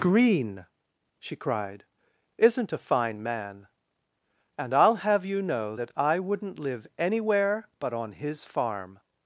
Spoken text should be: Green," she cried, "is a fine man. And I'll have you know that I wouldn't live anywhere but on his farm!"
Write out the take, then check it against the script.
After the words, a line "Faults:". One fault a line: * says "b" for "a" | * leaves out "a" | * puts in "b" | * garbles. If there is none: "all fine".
Green," she cried, "isn't a fine man. And I'll have you know that I wouldn't live anywhere but on his farm!"
Faults:
* says "isn't" for "is"